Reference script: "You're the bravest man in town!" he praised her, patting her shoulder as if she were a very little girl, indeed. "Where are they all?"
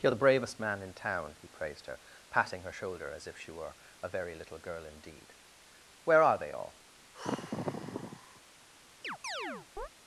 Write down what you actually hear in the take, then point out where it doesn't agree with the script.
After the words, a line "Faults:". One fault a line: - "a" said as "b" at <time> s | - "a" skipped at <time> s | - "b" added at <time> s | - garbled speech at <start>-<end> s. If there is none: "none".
"You're the bravest man in town!" he praised her, patting her shoulder as if she were a very little girl, indeed. "Where are they all?"
Faults:
none